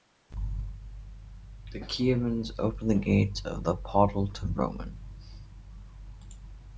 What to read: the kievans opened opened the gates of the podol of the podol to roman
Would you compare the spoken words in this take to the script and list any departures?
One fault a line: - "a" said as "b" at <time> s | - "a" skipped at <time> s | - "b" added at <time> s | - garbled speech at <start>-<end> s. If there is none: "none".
- "opened" skipped at 2.9 s
- "of the podol" skipped at 4.3 s